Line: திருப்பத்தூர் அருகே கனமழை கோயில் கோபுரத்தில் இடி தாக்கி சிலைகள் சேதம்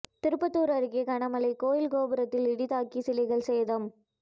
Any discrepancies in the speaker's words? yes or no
no